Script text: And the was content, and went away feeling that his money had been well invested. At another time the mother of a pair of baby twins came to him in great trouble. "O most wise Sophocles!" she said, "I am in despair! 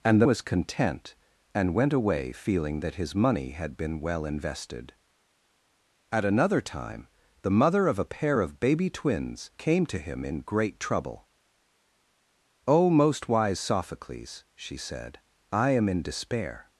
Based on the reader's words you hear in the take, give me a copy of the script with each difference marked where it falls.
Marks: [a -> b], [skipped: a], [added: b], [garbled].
And the was content, and went away feeling that his money had been well invested. At another time the mother of a pair of baby twins came to him in great trouble. "O most wise Sophocles!" she said, "I am in despair!